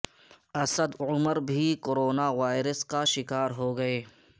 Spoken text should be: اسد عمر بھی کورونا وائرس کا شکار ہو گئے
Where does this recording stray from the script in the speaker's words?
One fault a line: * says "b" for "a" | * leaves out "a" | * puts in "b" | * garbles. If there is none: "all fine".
all fine